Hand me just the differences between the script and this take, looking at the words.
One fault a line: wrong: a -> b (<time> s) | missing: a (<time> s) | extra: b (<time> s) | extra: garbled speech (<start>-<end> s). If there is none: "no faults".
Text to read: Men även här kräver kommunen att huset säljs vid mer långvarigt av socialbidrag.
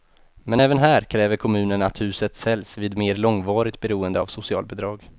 extra: beroende (3.8 s)